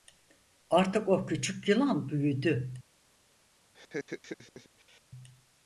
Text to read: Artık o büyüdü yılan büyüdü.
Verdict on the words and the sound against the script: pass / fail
fail